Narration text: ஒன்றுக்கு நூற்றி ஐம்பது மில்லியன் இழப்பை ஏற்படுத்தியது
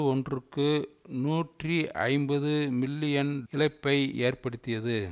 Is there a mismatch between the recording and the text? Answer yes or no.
no